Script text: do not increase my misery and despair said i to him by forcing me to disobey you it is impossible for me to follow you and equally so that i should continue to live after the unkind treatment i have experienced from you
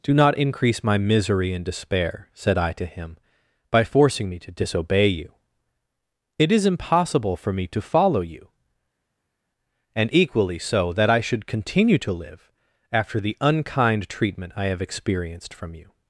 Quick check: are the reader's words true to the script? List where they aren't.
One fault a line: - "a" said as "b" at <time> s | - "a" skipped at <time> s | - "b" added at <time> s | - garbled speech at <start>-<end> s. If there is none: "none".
none